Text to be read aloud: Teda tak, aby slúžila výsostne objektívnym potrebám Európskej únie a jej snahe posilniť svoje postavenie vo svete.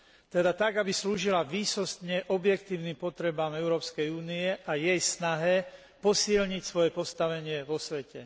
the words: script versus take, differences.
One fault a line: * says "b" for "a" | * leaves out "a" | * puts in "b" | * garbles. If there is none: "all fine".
all fine